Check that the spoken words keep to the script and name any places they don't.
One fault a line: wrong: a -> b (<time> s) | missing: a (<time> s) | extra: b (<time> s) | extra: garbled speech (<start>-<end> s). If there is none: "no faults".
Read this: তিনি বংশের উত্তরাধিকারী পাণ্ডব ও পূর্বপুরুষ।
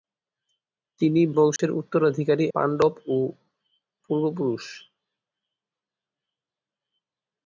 no faults